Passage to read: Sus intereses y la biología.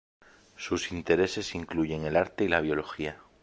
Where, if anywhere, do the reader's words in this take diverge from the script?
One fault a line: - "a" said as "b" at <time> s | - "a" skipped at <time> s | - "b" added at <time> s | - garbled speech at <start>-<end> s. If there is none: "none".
- "incluyen el arte" added at 1.5 s